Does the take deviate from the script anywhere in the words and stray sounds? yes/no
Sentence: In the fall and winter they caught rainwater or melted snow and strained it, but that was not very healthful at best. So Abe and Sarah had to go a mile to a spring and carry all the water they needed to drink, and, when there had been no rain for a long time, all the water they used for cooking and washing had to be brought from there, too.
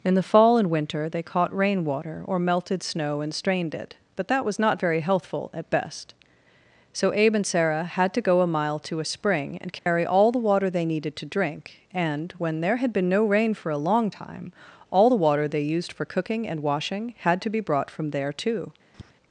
yes